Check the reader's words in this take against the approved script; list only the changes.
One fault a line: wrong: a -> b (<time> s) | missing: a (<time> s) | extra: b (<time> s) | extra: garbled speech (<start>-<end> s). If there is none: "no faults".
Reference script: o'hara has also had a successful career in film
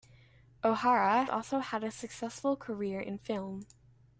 missing: has (1.2 s)